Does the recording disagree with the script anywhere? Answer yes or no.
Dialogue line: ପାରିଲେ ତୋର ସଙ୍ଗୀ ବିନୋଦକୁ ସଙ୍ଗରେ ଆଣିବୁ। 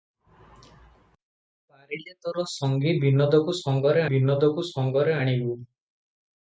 yes